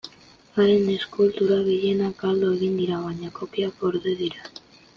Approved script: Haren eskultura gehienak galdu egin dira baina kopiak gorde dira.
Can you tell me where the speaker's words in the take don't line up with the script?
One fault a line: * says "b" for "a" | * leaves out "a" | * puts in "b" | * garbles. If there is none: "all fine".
all fine